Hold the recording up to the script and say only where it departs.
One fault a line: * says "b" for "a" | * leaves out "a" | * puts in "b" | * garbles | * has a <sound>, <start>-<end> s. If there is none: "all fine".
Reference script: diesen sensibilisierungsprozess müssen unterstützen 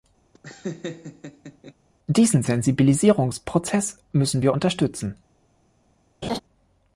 * has a laugh, 0.3-1.7 s
* puts in "wir"
* has a laugh, 6.2-6.4 s